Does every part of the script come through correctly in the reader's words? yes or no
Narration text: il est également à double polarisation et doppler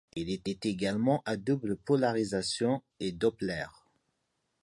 no